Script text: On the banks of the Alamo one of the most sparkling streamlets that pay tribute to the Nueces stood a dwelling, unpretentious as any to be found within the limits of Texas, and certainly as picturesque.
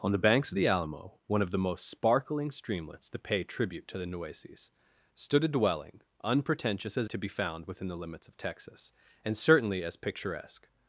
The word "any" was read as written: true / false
false